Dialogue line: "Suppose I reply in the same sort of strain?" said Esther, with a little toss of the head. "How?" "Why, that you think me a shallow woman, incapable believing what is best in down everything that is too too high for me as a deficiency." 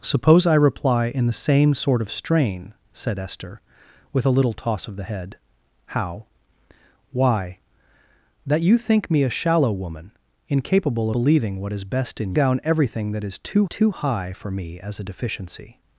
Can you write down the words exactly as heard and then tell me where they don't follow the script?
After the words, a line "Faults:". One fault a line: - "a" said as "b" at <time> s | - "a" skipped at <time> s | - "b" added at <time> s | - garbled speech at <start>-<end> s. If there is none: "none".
"Suppose I reply in the same sort of strain?" said Esther, with a little toss of the head. "How?" "Why, that you think me a shallow woman, incapable believing what is best in down everything that is too too high for me as a deficiency."
Faults:
none